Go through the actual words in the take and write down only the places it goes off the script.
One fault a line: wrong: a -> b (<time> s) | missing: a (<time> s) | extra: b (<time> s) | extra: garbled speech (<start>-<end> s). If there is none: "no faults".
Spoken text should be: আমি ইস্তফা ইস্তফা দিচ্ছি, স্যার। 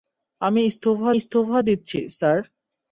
no faults